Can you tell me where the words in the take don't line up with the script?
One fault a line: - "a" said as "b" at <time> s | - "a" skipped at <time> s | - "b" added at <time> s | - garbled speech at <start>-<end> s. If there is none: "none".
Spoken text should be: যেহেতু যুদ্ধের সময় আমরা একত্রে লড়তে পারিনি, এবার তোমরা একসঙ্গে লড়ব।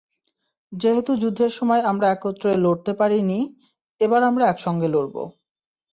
- "তোমরা" said as "আমরা" at 4.2 s